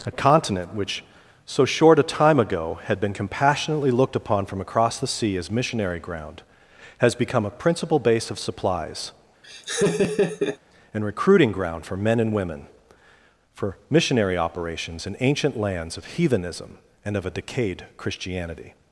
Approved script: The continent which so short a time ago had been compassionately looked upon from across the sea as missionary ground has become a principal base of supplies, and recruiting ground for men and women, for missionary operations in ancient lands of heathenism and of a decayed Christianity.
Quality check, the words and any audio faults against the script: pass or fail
fail